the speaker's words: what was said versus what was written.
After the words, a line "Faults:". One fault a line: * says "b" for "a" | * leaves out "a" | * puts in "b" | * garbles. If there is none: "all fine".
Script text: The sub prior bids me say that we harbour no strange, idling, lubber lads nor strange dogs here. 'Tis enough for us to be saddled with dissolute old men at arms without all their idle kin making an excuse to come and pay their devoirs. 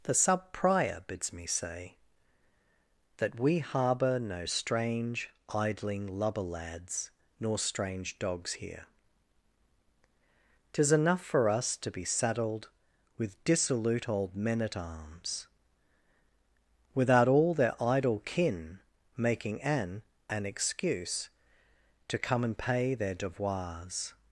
The sub prior bids me say that we harbour no strange, idling, lubber lads nor strange dogs here. 'Tis enough for us to be saddled with dissolute old men at arms without all their idle kin making an an excuse to come and pay their devoirs.
Faults:
* puts in "an"